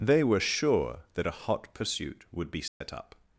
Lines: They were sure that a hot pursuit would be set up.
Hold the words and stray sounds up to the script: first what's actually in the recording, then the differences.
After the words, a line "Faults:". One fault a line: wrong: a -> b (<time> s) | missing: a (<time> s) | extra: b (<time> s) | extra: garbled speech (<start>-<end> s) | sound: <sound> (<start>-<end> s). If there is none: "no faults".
They were sure that a hot pursuit would be set up.
Faults:
sound: dropout (2.7-2.8 s)